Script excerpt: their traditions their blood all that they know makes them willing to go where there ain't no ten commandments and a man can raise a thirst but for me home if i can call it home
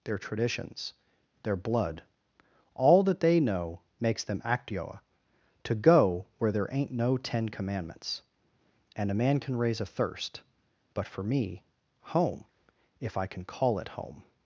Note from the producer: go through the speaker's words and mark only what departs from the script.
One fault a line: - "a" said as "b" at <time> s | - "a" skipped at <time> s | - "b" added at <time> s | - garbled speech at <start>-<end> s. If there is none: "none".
- "willing" said as "actioa" at 4.4 s